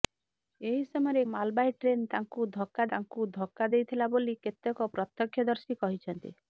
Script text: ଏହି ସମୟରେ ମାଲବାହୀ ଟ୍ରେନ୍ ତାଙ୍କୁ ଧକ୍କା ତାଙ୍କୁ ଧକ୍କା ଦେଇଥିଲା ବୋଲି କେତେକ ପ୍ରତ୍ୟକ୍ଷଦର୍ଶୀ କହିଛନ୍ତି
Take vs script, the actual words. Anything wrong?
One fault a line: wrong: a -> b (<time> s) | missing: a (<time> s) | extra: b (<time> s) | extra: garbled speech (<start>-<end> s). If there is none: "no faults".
no faults